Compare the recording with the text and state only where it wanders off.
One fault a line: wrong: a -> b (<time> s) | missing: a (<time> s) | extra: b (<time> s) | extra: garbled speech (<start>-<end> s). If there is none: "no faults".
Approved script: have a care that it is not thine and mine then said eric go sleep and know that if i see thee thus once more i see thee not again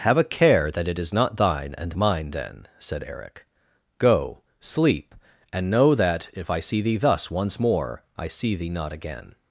no faults